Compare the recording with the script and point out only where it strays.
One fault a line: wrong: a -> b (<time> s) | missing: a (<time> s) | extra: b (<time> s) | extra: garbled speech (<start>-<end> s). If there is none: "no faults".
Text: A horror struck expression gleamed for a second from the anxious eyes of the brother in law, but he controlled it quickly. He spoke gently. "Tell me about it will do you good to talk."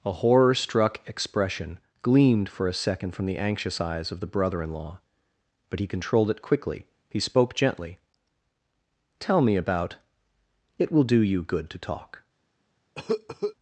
no faults